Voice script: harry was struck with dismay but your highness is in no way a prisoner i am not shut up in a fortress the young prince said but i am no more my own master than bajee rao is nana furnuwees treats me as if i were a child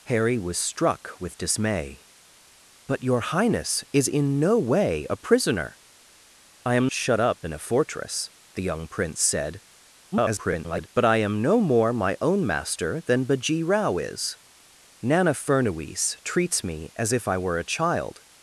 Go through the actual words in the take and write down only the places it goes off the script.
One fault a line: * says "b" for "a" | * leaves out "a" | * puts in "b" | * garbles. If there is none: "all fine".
* leaves out "not"
* garbles